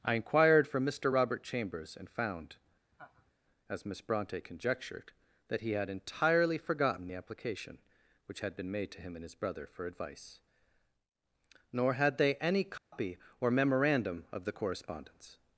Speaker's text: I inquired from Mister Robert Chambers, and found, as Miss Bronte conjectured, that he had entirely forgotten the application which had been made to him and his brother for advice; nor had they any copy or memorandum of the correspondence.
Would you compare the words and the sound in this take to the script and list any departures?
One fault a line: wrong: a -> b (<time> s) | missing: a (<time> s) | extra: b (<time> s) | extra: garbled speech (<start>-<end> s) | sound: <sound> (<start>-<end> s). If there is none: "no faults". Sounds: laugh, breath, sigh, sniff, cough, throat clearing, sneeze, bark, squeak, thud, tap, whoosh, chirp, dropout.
sound: laugh (2.9-3.3 s)
sound: dropout (12.8-12.9 s)